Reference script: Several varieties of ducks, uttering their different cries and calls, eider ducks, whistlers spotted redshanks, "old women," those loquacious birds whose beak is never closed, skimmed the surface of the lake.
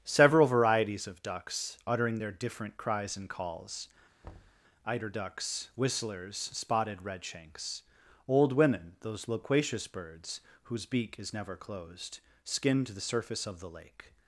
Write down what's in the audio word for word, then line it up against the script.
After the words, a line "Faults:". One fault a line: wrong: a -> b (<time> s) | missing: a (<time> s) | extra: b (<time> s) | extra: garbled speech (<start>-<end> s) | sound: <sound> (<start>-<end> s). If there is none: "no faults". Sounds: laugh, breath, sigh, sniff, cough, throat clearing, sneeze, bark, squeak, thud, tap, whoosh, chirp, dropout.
Several varieties of ducks, uttering their different cries and calls, eider ducks, whistlers spotted redshanks, "old women," those loquacious birds whose beak is never closed, skimmed the surface of the lake.
Faults:
sound: thud (4.2-4.6 s)